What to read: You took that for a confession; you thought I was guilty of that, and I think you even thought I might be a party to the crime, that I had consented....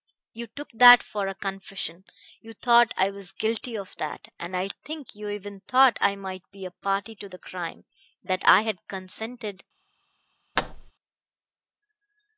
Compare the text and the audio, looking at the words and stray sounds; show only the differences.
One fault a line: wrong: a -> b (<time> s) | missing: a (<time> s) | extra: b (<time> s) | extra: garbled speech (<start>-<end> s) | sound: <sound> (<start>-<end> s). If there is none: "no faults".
sound: thud (10.6-10.9 s)